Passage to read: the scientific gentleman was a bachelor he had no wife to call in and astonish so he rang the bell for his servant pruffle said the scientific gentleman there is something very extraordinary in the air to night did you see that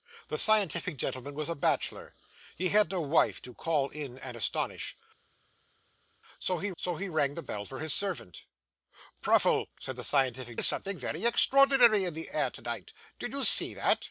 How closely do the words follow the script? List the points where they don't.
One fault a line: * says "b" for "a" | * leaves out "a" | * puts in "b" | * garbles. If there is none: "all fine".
* puts in "so he"
* leaves out "gentleman there"